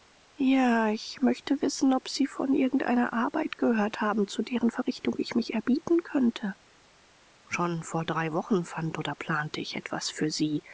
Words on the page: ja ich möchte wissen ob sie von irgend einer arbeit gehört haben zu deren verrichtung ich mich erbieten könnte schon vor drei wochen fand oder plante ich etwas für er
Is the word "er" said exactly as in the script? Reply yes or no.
no